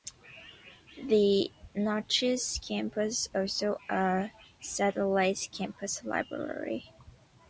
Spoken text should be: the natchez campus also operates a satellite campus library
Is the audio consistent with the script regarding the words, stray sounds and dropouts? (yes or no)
no